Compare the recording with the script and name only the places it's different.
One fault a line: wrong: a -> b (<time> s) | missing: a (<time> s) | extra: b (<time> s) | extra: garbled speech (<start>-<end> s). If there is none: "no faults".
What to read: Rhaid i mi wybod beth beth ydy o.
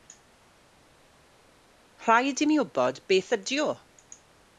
missing: beth (3.3 s)